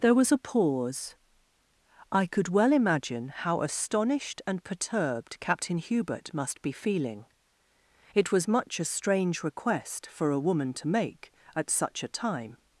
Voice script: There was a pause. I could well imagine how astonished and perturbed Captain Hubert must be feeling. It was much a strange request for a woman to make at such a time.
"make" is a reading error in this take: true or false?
false